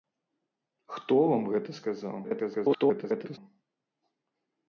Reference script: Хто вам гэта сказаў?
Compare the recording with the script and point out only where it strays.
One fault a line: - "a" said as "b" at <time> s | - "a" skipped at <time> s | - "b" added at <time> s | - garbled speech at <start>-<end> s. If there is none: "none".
- garbled speech at 2.2-3.4 s